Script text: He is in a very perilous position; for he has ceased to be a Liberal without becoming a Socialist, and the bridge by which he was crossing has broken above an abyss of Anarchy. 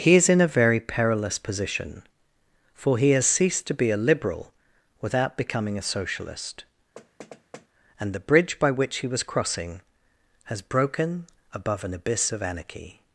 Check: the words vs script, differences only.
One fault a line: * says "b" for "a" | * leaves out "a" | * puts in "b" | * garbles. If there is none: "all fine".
all fine